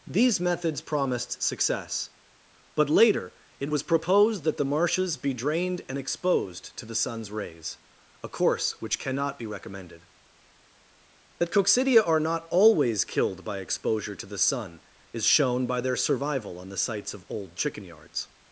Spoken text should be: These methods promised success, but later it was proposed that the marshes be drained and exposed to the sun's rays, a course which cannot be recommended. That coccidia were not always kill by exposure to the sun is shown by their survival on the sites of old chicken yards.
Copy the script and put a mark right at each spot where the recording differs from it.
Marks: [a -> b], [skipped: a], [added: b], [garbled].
These methods promised success, but later it was proposed that the marshes be drained and exposed to the sun's rays, a course which cannot be recommended. That coccidia [were -> are] not always [kill -> killed] by exposure to the sun is shown by their survival on the sites of old chicken yards.